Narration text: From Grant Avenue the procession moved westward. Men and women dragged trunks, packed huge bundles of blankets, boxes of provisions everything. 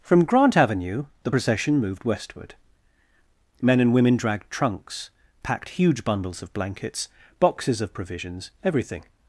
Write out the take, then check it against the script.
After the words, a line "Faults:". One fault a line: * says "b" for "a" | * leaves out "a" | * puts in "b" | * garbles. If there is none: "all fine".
From Grant Avenue the procession moved westward. Men and women dragged trunks, packed huge bundles of blankets, boxes of provisions everything.
Faults:
all fine